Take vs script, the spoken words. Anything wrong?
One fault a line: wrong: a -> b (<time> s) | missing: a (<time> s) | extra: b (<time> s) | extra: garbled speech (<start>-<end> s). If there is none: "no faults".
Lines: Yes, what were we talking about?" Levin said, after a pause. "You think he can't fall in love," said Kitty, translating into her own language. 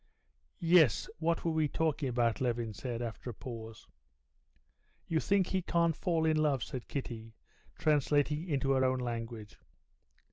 no faults